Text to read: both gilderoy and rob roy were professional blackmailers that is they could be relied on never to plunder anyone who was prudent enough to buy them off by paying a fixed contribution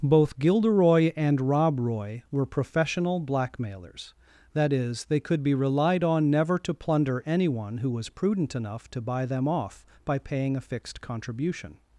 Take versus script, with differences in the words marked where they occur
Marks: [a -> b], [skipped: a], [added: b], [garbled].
both gilderoy and rob roy were professional blackmailers that is they could be relied on never to plunder anyone who was prudent enough to buy them off by paying a fixed contribution